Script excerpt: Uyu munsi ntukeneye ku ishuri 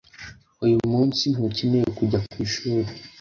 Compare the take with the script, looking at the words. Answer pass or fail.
fail